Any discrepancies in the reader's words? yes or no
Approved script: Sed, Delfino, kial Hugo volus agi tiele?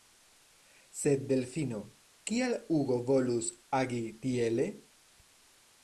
no